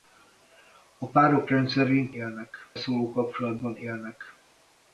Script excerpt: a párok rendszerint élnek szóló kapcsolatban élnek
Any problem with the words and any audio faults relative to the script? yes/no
no